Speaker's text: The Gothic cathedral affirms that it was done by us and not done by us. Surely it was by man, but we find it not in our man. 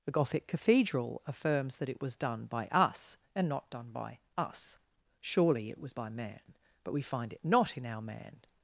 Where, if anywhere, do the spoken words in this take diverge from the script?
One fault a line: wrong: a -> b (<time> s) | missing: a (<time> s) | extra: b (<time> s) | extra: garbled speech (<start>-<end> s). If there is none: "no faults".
no faults